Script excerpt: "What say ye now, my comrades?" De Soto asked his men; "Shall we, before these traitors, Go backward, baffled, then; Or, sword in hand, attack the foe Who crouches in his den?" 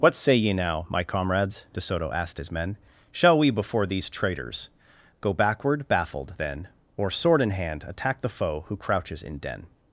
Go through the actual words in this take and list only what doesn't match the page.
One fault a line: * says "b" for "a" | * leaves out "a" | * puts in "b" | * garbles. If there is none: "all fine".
* leaves out "his"